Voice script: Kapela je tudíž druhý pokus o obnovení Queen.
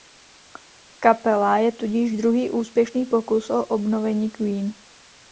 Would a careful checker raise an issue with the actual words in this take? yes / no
yes